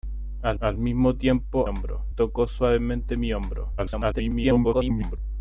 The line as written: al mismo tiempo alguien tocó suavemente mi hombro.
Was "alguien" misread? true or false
true